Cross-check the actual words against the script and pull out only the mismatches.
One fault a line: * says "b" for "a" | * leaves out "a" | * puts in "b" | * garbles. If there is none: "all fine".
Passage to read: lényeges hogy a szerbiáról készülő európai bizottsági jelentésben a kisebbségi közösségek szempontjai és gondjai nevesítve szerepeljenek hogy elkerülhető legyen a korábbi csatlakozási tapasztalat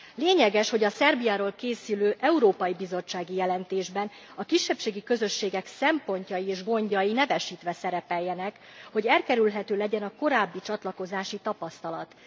all fine